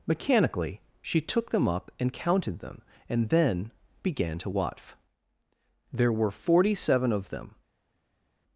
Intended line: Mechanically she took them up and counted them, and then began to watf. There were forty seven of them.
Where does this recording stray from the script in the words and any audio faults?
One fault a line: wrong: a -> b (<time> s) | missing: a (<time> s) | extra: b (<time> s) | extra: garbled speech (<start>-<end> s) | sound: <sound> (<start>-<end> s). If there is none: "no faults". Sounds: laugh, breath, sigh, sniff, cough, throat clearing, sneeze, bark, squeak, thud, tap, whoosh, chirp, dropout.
no faults